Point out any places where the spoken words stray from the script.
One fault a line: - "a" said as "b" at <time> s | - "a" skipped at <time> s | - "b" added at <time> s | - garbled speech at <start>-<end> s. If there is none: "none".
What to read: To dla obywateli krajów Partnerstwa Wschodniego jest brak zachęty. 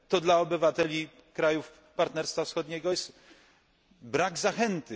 none